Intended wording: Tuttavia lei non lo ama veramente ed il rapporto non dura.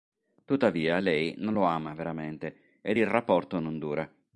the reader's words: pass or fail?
pass